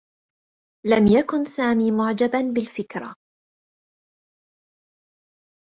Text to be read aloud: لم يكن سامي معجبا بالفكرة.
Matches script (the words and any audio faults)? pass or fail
pass